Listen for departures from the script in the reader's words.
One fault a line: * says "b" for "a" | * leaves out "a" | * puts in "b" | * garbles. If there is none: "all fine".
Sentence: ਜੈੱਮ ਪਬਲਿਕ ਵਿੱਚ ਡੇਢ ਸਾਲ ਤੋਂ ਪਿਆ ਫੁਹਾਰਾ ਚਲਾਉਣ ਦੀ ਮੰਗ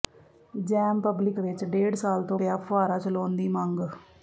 all fine